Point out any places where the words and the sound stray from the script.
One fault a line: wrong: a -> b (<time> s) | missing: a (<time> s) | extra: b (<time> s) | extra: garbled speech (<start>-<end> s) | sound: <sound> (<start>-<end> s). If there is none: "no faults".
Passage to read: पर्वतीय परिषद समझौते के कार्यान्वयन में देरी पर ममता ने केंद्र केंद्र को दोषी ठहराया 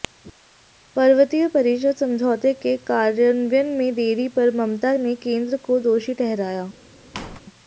missing: केंद्र (5.6 s)
sound: squeak (7.1-7.4 s)